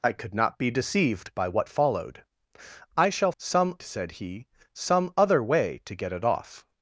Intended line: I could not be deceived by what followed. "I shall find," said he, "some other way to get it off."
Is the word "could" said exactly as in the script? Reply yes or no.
yes